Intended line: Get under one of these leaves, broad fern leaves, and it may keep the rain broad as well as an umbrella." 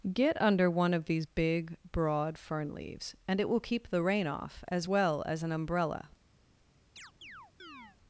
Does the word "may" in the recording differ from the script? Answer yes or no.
yes